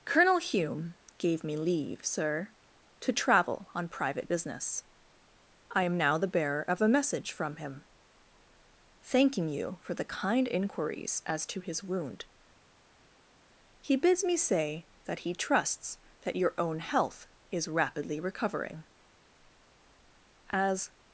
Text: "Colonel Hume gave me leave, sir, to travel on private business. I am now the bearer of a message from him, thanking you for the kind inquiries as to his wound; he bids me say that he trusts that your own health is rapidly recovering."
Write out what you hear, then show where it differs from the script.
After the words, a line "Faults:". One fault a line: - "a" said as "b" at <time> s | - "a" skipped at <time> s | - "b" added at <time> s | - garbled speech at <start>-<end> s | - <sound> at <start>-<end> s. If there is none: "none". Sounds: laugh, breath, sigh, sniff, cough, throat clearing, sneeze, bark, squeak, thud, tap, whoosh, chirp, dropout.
"Colonel Hume gave me leave, sir, to travel on private business. I am now the bearer of a message from him, thanking you for the kind inquiries as to his wound; he bids me say that he trusts that your own health is rapidly recovering." "As
Faults:
- "As" added at 20.5 s